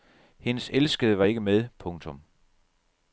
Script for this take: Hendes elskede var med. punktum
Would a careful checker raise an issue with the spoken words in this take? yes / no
yes